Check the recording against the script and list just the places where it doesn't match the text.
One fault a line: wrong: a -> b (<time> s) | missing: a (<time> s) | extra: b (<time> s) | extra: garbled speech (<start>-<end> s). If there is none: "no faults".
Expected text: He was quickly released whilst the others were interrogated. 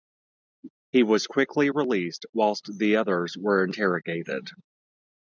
no faults